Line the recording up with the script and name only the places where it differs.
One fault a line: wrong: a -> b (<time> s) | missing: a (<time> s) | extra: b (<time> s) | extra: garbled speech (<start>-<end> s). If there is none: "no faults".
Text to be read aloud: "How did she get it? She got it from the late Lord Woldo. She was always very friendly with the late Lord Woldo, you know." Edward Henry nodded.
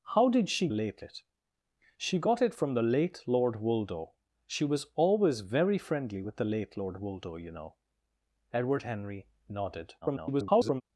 wrong: get -> late (0.7 s)
extra: garbled speech (10.0-10.8 s)